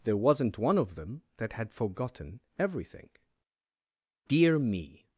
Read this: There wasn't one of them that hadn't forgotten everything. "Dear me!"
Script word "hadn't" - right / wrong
wrong